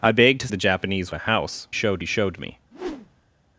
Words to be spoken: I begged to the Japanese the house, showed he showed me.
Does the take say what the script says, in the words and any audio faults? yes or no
no